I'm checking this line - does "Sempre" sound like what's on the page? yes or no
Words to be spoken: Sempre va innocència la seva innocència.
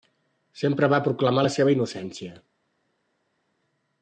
yes